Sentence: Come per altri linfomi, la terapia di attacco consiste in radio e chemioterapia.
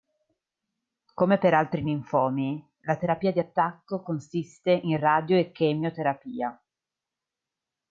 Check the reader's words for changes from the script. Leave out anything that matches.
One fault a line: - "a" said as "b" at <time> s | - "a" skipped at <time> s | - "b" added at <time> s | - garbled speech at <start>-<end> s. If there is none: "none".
none